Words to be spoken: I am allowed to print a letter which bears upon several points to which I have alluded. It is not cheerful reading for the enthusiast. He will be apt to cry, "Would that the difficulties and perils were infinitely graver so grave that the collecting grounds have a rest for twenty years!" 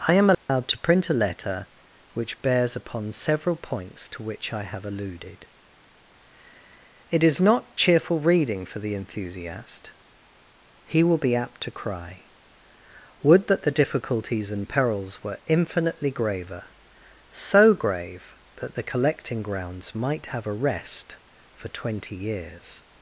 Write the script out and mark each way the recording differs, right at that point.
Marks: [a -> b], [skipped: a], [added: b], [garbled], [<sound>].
I am allowed [dropout] to print a letter which bears upon several points to which I have alluded. It is not cheerful reading for the enthusiast. He will be apt to cry, "Would that the difficulties and perils were infinitely graver so grave that the collecting grounds [added: might] have a rest for twenty years!"